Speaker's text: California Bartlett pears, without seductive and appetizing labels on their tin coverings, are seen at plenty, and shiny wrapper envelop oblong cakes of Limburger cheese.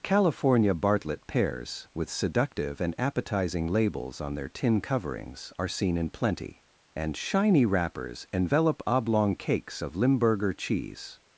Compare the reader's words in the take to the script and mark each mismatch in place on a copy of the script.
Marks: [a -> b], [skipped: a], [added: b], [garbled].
California Bartlett pears, [without -> with] seductive and appetizing labels on their tin coverings, are seen [at -> in] plenty, and shiny [wrapper -> wrappers] envelop oblong cakes of Limburger cheese.